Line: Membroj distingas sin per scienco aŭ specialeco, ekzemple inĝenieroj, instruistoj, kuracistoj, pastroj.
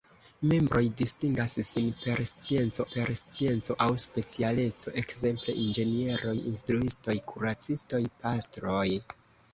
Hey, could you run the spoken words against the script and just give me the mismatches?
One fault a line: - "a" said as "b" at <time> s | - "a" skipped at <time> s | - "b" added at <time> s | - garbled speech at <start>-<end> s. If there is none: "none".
- "per scienco" added at 2.9 s